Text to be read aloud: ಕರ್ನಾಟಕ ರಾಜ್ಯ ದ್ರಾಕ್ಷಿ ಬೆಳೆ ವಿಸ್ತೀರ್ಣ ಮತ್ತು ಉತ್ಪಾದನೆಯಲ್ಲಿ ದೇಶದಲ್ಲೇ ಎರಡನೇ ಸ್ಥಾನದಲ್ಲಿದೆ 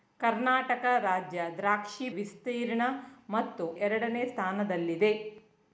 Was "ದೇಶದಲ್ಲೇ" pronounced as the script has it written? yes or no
no